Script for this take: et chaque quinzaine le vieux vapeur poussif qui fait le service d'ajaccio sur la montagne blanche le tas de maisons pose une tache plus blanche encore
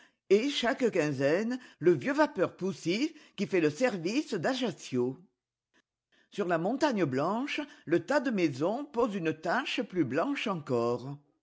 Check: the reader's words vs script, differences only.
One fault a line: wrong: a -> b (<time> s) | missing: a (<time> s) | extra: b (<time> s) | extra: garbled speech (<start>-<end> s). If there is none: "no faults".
no faults